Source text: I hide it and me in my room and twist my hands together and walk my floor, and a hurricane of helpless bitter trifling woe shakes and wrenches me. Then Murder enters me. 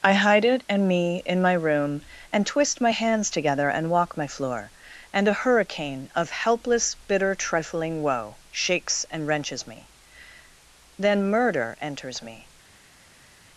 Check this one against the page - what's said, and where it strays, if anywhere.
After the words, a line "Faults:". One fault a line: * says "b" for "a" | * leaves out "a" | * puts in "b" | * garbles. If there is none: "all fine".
I hide it and me in my room and twist my hands together and walk my floor, and a hurricane of helpless bitter trifling woe shakes and wrenches me. Then Murder enters me.
Faults:
all fine